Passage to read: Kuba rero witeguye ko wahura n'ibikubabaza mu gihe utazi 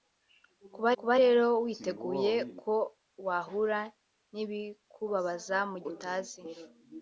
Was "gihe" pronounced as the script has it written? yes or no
no